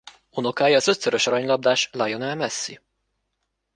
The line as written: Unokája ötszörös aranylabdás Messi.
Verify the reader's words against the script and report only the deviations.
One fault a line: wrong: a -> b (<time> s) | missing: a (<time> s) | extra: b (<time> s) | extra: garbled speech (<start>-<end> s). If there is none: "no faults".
extra: az (0.8 s)
extra: Lionel (1.9 s)